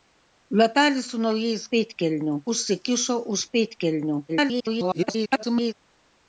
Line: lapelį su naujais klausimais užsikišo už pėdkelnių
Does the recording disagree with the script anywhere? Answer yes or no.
yes